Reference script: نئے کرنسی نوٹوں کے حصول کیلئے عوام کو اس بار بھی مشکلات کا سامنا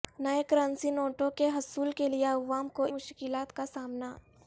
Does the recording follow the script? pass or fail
fail